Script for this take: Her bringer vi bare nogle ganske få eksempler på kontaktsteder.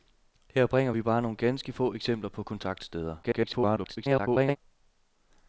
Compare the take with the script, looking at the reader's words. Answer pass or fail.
fail